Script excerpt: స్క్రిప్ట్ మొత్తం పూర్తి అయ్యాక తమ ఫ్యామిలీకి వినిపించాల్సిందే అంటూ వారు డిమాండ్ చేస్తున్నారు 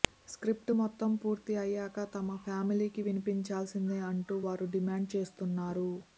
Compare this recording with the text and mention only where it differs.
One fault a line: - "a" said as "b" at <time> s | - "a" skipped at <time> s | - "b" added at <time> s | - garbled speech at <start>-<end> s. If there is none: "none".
none